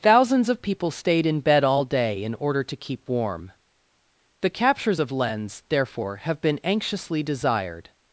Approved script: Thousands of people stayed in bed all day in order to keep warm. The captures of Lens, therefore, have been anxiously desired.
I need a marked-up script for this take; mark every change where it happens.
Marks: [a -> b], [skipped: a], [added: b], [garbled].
Thousands of people stayed in bed all day in order to keep warm. The captures of Lens, therefore, have been anxiously desired.